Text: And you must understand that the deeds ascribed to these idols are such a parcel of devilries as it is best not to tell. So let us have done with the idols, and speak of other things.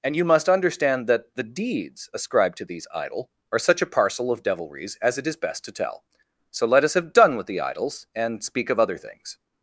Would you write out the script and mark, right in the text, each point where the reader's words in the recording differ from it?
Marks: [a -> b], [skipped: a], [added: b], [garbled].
And you must understand that the deeds ascribed to these [idols -> idol] are such a parcel of devilries as it is best [skipped: not] to tell. So let us have done with the idols, and speak of other things.